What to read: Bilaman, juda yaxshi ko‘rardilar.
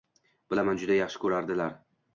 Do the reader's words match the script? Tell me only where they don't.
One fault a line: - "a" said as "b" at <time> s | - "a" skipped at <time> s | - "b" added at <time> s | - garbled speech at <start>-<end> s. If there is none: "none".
none